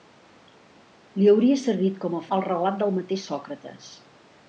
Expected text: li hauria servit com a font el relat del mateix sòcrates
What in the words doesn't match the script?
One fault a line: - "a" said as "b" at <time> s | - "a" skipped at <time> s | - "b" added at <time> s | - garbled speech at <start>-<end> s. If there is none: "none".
- "font" skipped at 2.2 s